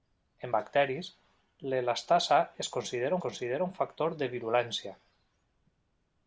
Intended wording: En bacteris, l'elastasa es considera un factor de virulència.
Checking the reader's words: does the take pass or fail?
fail